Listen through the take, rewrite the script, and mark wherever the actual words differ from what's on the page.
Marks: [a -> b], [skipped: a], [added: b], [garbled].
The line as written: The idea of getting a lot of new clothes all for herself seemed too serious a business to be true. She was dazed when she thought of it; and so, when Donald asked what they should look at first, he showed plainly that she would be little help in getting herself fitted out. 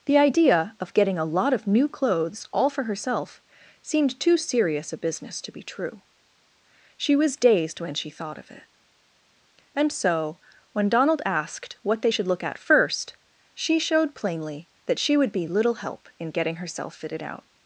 The idea of getting a lot of new clothes all for herself seemed too serious a business to be true. She was dazed when she thought of it; and so, when Donald asked what they should look at first, [he -> she] showed plainly that she would be little help in getting herself fitted out.